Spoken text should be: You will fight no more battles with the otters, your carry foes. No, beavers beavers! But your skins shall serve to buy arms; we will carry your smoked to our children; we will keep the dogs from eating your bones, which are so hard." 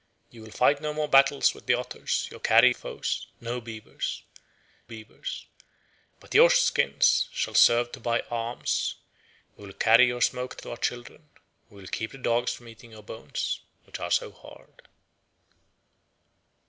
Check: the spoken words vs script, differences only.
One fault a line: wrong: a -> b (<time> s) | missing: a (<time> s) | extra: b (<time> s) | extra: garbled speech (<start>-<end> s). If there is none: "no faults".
no faults